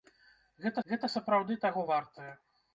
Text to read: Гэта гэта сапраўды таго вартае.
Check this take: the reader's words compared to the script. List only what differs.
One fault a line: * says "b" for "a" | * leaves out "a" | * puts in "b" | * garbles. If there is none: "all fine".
all fine